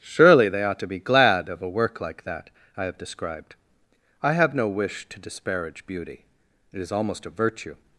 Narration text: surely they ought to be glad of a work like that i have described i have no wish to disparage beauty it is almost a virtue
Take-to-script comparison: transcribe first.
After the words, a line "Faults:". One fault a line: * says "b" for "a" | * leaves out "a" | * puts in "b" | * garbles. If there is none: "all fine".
surely they ought to be glad of a work like that i have described i have no wish to disparage beauty it is almost a virtue
Faults:
all fine